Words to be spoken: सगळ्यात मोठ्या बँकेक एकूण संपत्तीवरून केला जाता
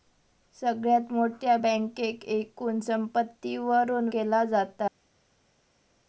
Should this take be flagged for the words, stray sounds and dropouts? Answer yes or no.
no